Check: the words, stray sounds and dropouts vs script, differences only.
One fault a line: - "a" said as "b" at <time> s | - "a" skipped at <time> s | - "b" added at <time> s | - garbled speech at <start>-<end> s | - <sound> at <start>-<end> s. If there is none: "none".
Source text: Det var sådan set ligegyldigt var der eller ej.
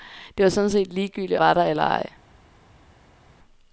none